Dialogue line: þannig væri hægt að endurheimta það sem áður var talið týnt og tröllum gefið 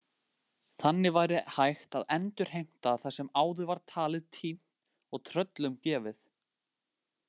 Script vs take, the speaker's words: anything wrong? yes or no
no